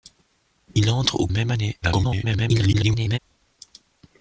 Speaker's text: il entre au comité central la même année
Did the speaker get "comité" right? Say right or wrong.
wrong